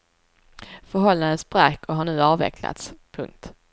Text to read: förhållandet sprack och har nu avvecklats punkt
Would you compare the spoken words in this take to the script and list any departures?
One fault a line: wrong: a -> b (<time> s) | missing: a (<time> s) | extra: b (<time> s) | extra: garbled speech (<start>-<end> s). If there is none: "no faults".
no faults